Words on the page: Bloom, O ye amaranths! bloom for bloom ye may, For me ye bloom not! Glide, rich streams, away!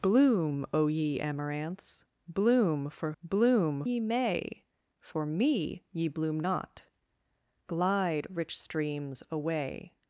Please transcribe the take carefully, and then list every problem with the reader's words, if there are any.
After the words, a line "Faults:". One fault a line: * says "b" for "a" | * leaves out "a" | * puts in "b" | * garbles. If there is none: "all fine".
Bloom, O ye amaranths! bloom for bloom ye may, For me ye bloom not! Glide, rich streams, away!
Faults:
all fine